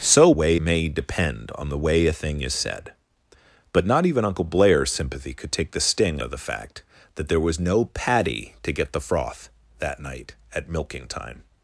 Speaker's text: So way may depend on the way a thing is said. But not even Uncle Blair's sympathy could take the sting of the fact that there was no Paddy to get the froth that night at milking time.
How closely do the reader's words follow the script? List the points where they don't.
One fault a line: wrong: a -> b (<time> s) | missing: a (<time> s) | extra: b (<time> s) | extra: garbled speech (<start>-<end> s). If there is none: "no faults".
no faults